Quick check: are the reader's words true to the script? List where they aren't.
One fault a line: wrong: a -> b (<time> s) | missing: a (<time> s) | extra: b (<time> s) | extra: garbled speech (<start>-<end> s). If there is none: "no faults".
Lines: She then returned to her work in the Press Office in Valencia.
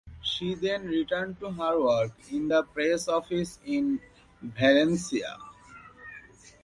no faults